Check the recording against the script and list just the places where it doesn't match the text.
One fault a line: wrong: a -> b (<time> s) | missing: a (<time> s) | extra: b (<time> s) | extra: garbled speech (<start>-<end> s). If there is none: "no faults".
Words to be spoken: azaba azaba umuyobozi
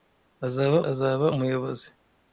no faults